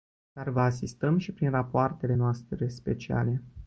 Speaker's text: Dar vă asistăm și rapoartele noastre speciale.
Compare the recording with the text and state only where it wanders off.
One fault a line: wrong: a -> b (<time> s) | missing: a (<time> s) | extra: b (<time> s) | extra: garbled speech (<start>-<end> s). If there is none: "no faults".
extra: prin (1.3 s)